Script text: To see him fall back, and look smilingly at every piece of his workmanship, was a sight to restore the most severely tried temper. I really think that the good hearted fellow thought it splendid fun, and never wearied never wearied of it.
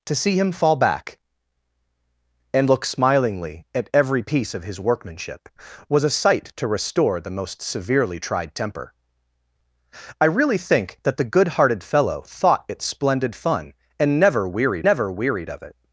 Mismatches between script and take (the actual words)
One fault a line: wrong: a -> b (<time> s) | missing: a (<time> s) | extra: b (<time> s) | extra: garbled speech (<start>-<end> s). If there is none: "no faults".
no faults